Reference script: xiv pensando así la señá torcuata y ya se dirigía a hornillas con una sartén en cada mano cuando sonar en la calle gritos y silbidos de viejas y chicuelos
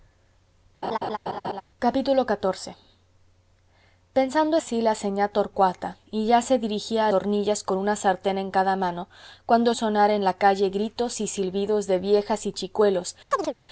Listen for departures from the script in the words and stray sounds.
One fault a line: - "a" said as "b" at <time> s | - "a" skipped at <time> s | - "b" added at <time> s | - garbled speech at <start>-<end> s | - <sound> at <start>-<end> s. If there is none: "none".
- laugh at 0.8-1.6 s
- chirp at 13.3-13.5 s